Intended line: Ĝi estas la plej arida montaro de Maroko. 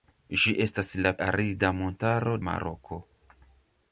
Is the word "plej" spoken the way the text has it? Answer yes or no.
no